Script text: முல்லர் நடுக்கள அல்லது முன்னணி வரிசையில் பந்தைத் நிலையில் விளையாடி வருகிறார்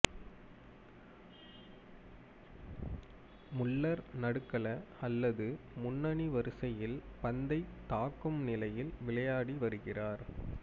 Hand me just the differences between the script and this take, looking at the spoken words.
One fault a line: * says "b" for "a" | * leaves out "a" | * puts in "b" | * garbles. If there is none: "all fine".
* puts in "தாக்கும்"